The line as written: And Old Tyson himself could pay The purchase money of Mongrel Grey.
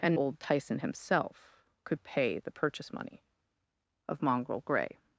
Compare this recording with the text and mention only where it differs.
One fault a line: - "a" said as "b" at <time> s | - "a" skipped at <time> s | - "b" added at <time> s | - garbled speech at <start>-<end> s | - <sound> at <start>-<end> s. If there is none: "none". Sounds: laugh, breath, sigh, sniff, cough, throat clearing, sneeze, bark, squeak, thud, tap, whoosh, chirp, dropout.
none